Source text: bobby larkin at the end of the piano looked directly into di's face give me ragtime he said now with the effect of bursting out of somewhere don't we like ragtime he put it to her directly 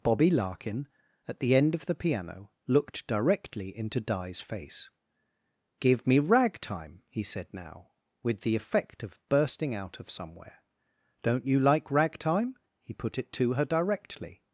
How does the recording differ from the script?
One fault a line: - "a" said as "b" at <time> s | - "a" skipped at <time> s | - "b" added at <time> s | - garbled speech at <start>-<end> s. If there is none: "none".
- "we" said as "you" at 11.5 s